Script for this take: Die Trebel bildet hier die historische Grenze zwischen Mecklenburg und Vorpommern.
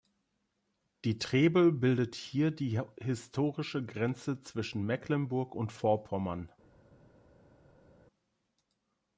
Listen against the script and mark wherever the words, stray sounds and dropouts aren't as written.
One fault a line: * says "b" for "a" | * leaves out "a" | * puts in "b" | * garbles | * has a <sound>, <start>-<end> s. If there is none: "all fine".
all fine